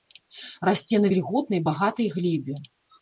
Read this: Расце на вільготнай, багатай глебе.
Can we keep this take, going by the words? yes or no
yes